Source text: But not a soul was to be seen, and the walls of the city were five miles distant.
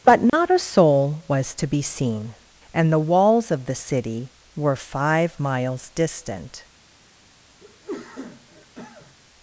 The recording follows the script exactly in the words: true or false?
true